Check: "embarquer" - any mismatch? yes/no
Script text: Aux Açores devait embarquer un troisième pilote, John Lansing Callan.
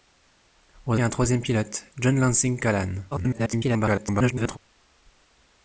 yes